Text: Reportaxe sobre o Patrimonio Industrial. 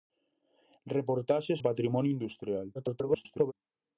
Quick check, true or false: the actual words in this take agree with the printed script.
false